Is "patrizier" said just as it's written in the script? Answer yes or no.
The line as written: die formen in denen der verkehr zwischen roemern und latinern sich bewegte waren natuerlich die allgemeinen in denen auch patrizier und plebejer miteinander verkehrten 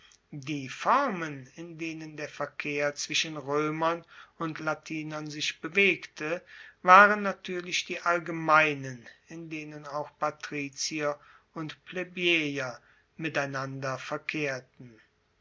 yes